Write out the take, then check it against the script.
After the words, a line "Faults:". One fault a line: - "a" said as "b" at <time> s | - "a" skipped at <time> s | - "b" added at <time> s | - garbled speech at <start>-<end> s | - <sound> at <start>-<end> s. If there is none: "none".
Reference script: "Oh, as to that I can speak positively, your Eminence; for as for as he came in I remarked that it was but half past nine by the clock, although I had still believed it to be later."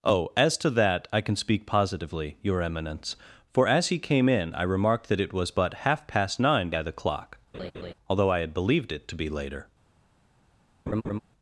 "Oh, as to that I can speak positively, your Eminence; for as he came in I remarked that it was but half past nine by the clock, although I had believed it to be later."
Faults:
- "for as" skipped at 3.9 s
- laugh at 7.5-7.9 s
- "still" skipped at 8.5 s
- laugh at 10.9-11.2 s